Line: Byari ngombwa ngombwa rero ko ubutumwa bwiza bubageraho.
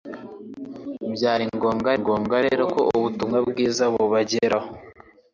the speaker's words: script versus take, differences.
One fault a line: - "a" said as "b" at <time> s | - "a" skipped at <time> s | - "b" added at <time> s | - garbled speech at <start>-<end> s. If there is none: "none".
none